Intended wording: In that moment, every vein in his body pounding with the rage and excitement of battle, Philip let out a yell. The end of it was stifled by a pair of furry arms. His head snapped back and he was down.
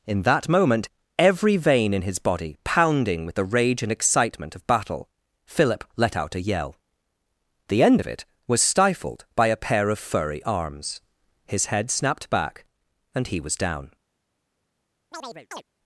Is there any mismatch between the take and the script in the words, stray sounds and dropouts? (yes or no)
yes